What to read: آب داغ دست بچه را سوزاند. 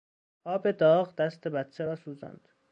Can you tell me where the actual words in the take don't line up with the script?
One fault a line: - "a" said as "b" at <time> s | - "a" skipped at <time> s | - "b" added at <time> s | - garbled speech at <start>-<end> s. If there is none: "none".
none